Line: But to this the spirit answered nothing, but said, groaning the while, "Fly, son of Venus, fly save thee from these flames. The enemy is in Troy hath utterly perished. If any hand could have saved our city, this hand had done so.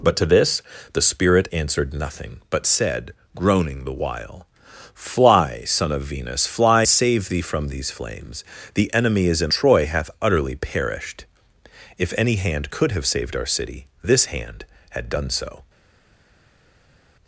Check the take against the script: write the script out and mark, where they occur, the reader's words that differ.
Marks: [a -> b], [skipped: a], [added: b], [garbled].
But to this the spirit answered nothing, but said, groaning the while, "Fly, son of Venus, fly save thee from these flames. The enemy is in Troy hath utterly perished. If any hand could have saved our city, this hand had done so.